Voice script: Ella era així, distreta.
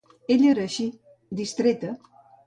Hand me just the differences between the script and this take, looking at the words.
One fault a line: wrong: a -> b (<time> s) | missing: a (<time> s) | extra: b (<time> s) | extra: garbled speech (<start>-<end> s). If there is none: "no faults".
no faults